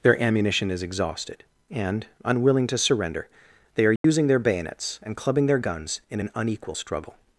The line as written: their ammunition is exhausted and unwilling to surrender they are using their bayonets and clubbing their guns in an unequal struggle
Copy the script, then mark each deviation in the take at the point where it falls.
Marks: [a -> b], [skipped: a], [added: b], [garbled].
their ammunition is exhausted and unwilling to surrender they are using their bayonets and clubbing their guns in an unequal struggle